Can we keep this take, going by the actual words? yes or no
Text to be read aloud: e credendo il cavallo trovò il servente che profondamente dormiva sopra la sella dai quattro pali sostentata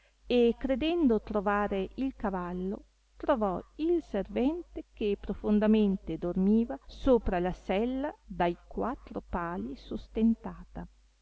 no